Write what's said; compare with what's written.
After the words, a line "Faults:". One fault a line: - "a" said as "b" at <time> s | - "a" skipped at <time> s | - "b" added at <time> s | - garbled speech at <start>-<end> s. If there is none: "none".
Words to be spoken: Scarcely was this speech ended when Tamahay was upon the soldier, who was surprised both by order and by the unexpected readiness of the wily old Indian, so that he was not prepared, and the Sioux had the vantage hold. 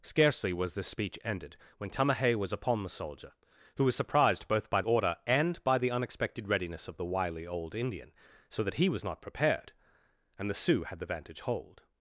Scarcely was this speech ended when Tamahay was upon the soldier, who was surprised both by order and by the unexpected readiness of the wily old Indian, so that he was not prepared, and the Sioux had the vantage hold.
Faults:
none